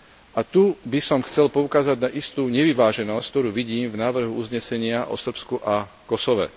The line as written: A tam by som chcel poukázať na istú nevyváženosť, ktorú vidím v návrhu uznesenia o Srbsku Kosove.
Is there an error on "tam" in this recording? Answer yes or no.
yes